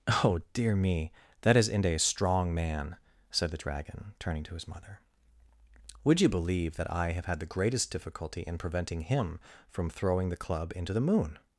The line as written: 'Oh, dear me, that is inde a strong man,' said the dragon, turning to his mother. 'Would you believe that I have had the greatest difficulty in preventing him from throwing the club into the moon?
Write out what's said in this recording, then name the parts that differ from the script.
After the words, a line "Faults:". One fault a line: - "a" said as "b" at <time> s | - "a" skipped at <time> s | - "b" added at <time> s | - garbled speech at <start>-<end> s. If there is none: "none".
'Oh, dear me, that is inde a strong man,' said the dragon, turning to his mother. 'Would you believe that I have had the greatest difficulty in preventing him from throwing the club into the moon?
Faults:
none